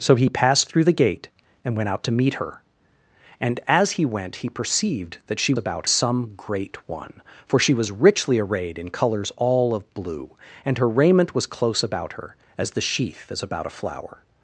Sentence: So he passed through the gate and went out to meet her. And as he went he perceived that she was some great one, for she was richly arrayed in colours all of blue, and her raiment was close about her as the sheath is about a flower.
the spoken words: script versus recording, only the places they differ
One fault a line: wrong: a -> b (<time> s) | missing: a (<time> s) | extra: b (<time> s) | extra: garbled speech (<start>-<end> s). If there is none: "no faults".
wrong: was -> about (5.6 s)